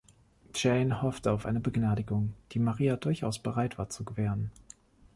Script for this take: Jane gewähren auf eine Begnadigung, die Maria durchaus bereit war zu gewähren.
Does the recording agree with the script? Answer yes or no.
no